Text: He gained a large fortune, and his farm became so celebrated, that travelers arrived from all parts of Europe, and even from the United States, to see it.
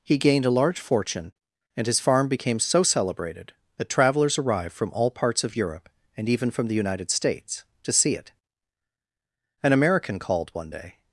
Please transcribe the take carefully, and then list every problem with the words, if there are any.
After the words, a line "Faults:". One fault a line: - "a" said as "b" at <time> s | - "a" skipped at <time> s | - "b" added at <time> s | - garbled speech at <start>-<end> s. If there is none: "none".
He gained a large fortune, and his farm became so celebrated, that travelers arrived from all parts of Europe, and even from the United States, to see it. An American called one day
Faults:
- "An American called one day" added at 9.6 s